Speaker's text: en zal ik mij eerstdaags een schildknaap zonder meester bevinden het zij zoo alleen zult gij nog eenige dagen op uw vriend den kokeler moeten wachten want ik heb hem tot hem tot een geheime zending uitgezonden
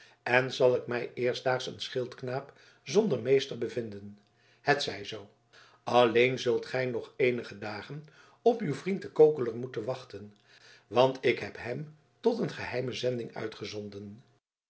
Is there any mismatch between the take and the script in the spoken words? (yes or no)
yes